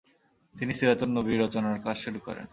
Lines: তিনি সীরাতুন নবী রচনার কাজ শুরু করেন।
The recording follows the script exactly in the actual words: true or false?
true